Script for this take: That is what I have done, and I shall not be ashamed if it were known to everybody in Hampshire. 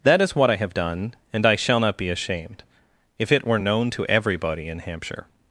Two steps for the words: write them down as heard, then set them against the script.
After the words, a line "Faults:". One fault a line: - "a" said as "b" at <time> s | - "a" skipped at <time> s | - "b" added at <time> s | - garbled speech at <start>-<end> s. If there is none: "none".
That is what I have done, and I shall not be ashamed if it were known to everybody in Hampshire.
Faults:
none